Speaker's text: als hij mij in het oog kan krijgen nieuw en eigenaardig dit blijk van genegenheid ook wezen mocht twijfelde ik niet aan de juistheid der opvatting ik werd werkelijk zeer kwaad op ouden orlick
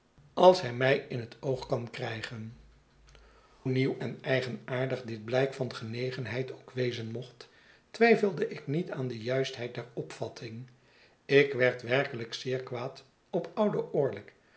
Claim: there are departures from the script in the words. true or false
false